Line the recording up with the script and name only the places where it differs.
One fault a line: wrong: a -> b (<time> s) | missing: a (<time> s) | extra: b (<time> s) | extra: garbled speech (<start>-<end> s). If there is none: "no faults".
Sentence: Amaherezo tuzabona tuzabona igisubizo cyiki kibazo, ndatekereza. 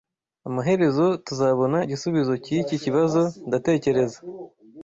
missing: tuzabona (1.8 s)